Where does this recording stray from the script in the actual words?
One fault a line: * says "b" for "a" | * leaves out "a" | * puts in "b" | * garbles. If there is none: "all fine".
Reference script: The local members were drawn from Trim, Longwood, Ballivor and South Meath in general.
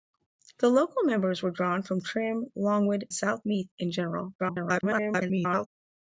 * leaves out "Ballivor and"
* garbles